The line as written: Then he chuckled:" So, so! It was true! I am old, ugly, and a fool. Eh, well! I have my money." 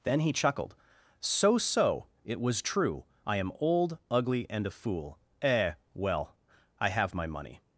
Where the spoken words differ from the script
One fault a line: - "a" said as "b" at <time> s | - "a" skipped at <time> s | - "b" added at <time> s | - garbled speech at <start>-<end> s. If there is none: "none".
none